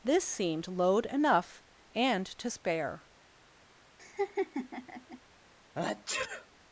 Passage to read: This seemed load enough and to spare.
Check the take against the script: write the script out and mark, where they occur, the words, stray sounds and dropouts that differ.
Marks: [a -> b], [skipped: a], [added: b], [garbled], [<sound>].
This seemed load enough and to spare. [laugh] [sneeze]